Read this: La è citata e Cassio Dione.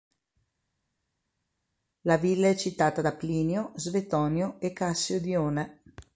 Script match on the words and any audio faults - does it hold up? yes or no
no